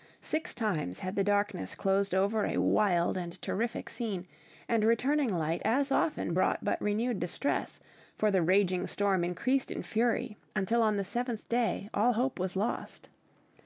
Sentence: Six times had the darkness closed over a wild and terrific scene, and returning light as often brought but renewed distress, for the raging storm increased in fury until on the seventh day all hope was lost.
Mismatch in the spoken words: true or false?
false